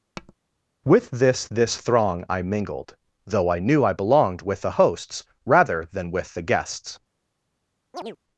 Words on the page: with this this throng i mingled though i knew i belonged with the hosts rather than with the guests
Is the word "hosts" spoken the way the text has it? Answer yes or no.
yes